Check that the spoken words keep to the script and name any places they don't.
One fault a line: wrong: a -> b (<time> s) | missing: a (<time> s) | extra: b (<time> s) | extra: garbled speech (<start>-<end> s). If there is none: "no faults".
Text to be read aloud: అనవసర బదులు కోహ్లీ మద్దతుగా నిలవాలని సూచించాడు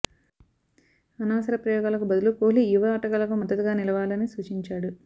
extra: ప్రయోగాలకు (1.6 s)
extra: యువ ఆటగాళ్లకు (2.7 s)